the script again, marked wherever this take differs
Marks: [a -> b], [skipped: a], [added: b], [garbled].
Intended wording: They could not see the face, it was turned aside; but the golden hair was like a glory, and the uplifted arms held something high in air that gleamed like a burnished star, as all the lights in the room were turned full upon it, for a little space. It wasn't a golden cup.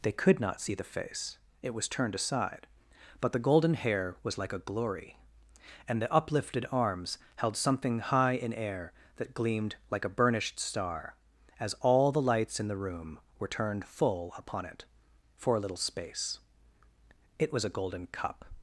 They could not see the face, it was turned aside; but the golden hair was like a glory, and the uplifted arms held something high in air that gleamed like a burnished star, as all the lights in the room were turned full upon it, for a little space. It [wasn't -> was] a golden cup.